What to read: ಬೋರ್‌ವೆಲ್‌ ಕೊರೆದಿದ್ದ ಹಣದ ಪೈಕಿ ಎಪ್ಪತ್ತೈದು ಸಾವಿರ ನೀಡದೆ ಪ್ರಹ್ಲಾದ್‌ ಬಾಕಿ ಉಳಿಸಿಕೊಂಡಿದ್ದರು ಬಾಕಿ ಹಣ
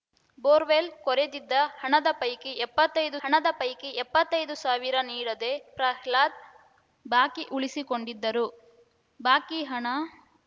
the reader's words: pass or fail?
fail